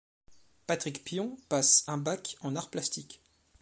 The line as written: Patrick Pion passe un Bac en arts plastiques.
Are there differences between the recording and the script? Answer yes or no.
no